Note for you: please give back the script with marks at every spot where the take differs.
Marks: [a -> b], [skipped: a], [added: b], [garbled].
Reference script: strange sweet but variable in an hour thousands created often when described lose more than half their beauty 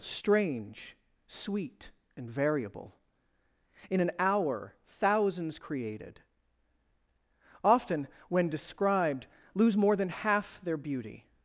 strange sweet [but -> and] variable in an hour thousands created often when described lose more than half their beauty